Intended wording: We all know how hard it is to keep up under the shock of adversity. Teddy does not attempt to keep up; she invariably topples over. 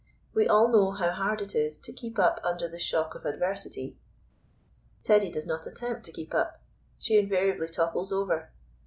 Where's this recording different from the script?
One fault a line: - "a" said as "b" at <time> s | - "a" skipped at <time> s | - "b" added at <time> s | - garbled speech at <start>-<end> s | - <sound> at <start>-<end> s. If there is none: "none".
none